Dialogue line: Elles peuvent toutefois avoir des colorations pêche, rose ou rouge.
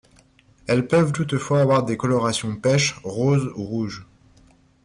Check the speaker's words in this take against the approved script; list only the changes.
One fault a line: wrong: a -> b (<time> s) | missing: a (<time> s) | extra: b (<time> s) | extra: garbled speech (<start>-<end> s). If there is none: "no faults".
no faults